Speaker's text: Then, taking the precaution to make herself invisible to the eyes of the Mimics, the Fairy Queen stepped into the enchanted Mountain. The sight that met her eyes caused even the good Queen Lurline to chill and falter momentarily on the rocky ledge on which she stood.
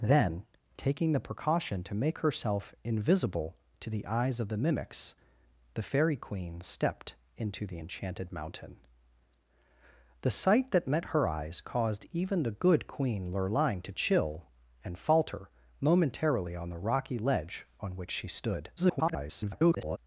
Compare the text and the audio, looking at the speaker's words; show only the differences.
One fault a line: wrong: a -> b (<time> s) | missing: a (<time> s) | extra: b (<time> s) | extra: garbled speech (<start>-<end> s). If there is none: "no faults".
extra: garbled speech (18.8-20.0 s)